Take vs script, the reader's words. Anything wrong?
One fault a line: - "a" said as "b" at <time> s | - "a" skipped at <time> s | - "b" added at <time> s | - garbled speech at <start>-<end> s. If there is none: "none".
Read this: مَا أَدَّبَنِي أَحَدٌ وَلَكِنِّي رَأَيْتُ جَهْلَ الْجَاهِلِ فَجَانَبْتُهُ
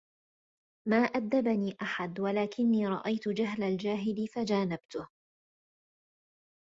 none